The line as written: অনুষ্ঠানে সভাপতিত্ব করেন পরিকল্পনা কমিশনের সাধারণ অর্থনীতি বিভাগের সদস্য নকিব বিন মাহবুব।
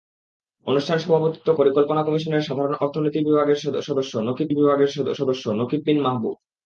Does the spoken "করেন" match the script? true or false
false